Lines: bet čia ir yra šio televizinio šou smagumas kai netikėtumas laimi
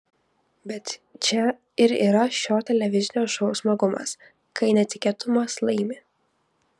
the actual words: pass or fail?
pass